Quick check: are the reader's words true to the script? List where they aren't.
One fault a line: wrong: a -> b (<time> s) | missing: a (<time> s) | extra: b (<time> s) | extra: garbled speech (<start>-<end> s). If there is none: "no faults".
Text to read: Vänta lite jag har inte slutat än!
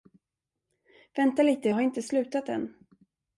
no faults